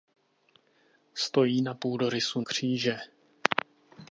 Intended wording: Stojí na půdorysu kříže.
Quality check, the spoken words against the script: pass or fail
pass